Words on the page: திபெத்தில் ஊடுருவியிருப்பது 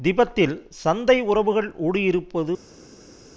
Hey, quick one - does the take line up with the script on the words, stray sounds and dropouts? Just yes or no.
no